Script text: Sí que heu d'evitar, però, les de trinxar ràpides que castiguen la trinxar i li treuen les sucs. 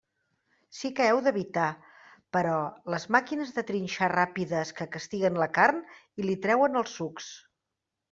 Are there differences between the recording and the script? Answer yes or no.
yes